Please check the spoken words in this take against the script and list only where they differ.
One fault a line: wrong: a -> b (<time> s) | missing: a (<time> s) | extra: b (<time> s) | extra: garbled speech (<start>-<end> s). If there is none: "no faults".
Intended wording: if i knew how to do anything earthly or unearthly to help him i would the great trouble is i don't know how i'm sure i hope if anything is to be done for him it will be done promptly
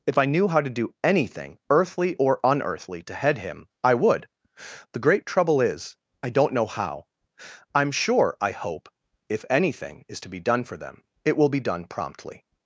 wrong: help -> head (3.1 s)
wrong: him -> them (10.8 s)